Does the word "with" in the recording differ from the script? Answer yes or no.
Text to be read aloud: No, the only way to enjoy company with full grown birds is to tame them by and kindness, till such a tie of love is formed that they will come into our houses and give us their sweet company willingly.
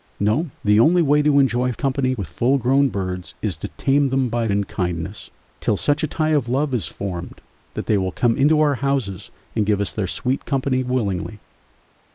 no